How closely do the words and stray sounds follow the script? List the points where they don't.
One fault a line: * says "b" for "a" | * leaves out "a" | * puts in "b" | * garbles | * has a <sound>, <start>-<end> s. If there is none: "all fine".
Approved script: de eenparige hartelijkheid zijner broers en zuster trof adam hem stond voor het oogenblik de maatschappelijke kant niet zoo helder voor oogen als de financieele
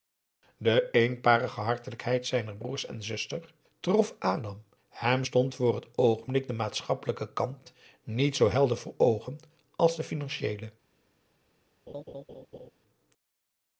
* has a laugh, 11.9-12.7 s